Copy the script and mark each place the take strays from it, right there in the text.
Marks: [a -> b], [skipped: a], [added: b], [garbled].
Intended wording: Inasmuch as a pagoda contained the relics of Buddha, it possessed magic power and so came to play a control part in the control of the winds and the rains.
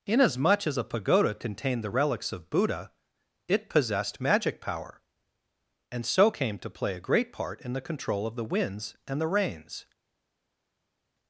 Inasmuch as a pagoda contained the relics of Buddha, it possessed magic power and so came to play a [control -> great] part in the control of the winds and the rains.